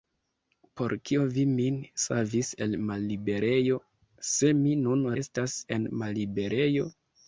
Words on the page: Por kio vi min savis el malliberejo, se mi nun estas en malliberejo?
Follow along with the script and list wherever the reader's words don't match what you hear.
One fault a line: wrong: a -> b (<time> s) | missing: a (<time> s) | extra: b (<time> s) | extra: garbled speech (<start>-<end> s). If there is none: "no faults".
no faults